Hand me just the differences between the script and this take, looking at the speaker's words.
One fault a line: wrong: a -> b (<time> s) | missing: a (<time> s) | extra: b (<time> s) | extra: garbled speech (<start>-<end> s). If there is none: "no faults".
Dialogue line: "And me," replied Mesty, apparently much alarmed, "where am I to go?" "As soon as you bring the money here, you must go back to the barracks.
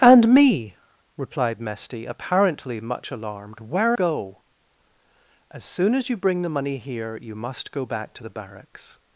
missing: am I to (4.0 s)